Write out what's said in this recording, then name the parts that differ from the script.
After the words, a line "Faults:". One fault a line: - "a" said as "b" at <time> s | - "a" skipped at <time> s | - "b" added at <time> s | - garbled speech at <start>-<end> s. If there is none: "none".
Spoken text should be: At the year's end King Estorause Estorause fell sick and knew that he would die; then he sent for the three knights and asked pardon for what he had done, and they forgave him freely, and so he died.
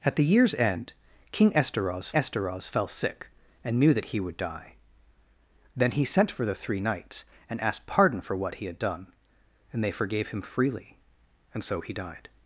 At the year's end King Estorause Estorause fell sick and knew that he would die; then he sent for the three knights and asked pardon for what he had done, and they forgave him freely, and so he died.
Faults:
none